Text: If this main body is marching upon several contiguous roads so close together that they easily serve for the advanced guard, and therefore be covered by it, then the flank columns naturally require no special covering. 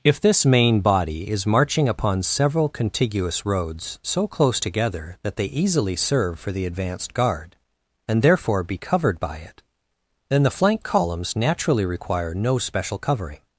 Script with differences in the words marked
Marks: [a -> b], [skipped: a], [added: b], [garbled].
If this main body is marching upon several contiguous roads so close together that they easily serve for the advanced guard, and therefore be covered by it, then the flank columns naturally require no special covering.